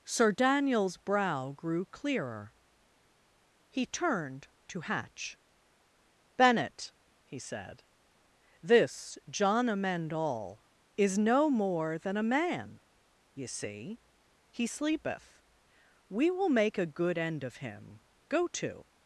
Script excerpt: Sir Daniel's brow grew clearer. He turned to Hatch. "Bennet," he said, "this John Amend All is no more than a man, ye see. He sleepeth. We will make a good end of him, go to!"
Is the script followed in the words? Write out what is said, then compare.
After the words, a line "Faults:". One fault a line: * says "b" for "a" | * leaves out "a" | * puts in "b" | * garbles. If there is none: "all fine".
Sir Daniel's brow grew clearer. He turned to Hatch. "Bennet," he said, "this John Amend All is no more than a man, ye see. He sleepeth. We will make a good end of him, go to!"
Faults:
all fine